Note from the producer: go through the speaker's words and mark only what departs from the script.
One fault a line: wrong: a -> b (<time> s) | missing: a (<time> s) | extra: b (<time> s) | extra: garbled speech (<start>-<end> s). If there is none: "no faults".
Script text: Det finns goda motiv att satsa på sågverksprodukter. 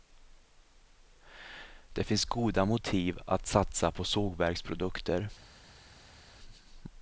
no faults